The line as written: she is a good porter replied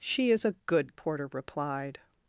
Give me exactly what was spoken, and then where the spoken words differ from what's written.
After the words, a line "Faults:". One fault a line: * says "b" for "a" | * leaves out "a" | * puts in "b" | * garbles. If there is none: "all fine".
she is a good porter replied
Faults:
all fine